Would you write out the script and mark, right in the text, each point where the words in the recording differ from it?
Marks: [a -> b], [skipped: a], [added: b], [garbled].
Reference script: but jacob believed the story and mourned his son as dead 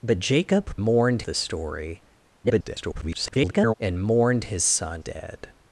but jacob [believed -> mourned] the story [garbled] and mourned his son [skipped: as] dead